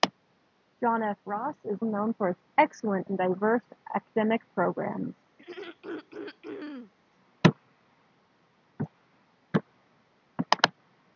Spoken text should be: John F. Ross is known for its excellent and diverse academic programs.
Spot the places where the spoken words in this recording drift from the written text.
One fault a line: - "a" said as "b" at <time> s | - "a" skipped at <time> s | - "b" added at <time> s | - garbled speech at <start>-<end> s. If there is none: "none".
none